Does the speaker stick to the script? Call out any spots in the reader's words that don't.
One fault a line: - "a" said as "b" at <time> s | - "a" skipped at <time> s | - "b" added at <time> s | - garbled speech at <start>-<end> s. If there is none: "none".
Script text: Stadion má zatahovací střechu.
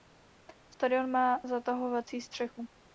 none